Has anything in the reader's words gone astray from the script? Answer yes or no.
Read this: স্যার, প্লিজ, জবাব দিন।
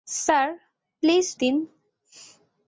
yes